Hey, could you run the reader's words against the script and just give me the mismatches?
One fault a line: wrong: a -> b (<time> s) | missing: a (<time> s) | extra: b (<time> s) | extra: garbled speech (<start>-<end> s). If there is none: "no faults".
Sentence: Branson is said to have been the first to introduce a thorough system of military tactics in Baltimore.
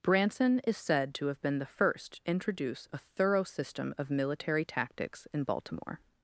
missing: to (2.2 s)